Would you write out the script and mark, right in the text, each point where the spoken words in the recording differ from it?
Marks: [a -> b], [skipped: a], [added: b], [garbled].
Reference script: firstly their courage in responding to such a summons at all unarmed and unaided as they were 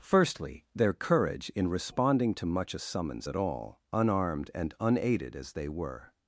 firstly their courage in responding to [such -> much] a summons at all unarmed and unaided as they were